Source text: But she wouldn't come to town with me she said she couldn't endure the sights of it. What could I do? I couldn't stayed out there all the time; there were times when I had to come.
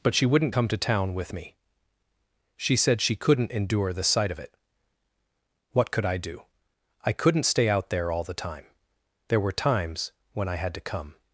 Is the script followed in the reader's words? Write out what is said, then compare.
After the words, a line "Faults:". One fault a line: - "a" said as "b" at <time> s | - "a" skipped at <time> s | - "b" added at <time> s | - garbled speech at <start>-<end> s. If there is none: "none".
But she wouldn't come to town with me she said she couldn't endure the sight of it. What could I do? I couldn't stay out there all the time; there were times when I had to come.
Faults:
- "sights" said as "sight" at 4.0 s
- "stayed" said as "stay" at 7.4 s